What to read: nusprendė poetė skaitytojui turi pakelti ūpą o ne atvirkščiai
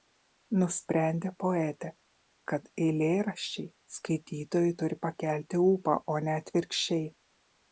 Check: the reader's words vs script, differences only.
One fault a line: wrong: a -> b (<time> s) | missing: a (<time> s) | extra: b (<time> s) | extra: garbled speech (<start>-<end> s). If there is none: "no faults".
extra: kad eilėraščiai (2.5 s)